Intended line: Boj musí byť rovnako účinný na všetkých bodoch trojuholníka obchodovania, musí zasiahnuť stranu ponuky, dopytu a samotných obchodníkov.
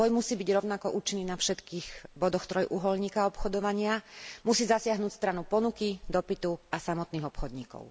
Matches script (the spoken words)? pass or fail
pass